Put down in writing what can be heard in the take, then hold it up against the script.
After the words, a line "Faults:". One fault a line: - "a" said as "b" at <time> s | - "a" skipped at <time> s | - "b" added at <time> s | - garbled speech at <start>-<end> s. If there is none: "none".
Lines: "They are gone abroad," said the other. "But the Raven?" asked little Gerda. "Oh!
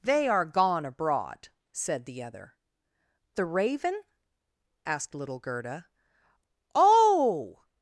"They are gone abroad," said the other. "The Raven?" asked little Gerda. "Oh!
Faults:
- "But" skipped at 2.6 s